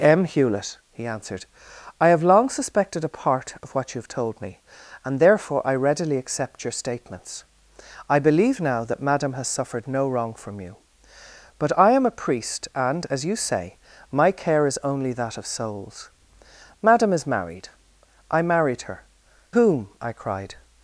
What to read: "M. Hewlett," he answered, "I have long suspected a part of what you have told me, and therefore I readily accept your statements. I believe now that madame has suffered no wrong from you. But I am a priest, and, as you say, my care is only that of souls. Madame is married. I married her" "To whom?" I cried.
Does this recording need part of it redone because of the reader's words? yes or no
yes